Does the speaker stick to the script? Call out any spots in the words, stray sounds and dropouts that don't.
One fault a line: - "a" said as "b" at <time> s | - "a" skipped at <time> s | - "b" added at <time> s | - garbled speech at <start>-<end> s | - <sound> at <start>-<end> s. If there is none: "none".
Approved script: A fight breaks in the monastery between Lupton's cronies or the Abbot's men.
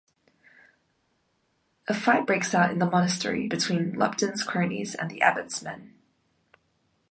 - "out" added at 2.5 s
- "or" said as "and" at 4.9 s